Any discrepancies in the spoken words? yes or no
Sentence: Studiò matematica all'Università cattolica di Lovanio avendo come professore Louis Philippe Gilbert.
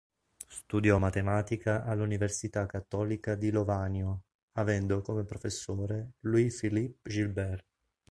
no